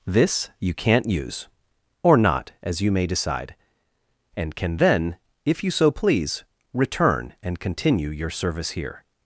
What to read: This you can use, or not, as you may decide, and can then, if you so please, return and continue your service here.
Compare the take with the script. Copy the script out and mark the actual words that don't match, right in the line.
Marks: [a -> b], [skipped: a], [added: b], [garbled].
This you [can -> can't] use, or not, as you may decide, and can then, if you so please, return and continue your service here.